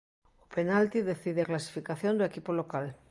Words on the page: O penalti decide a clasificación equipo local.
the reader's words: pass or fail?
fail